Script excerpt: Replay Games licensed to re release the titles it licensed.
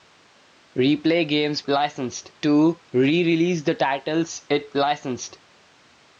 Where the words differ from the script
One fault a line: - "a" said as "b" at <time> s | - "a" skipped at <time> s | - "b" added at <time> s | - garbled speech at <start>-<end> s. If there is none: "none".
none